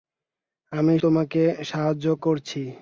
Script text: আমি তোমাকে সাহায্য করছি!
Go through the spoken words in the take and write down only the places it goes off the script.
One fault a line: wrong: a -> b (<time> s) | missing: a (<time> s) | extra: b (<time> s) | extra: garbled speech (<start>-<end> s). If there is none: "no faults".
no faults